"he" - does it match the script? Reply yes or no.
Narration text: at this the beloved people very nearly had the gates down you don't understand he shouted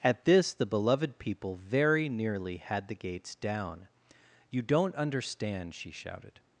no